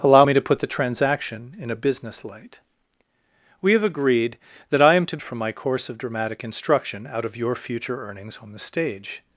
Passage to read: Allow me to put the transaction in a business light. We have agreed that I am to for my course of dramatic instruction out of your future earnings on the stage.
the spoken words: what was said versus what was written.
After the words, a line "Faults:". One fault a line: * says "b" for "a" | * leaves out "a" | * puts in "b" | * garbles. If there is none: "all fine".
Allow me to put the transaction in a business light. We have agreed that I am to for my course of dramatic instruction out of your future earnings on the stage.
Faults:
all fine